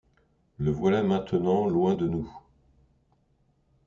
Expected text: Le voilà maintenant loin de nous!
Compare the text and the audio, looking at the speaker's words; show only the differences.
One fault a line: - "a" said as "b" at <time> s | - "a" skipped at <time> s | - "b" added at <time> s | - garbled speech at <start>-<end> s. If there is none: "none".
none